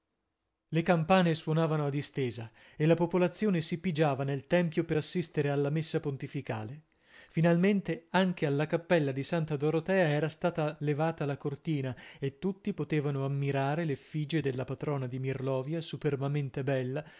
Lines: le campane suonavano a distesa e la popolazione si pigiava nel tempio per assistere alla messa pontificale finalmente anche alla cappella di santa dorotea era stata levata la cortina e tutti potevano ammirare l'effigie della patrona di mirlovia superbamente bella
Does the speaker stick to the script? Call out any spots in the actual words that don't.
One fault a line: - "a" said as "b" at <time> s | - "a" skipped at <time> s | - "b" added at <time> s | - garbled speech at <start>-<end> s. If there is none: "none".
none